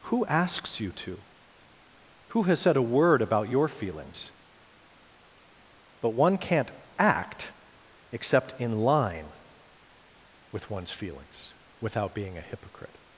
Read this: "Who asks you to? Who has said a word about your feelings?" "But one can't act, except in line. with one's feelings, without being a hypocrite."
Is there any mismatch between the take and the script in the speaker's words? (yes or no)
no